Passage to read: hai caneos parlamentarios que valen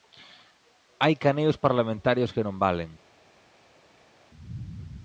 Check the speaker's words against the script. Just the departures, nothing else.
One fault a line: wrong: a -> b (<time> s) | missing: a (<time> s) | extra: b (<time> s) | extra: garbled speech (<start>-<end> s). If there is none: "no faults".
extra: non (2.5 s)